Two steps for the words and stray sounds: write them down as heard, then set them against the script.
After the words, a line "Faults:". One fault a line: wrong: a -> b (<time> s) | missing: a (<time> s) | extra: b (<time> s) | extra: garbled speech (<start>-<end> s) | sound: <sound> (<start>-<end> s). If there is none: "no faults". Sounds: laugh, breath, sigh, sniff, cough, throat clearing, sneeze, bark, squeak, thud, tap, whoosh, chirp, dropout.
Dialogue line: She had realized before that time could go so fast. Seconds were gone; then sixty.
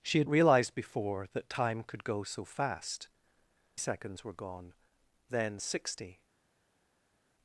She had realized before that time could go so fast. Seconds were gone; then sixty.
Faults:
no faults